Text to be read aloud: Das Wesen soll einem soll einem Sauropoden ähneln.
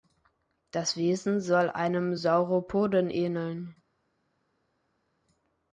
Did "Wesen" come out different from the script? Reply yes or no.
no